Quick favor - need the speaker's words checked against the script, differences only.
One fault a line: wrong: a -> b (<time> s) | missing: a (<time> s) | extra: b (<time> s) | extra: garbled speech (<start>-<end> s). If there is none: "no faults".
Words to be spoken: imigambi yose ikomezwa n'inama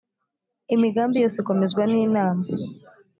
no faults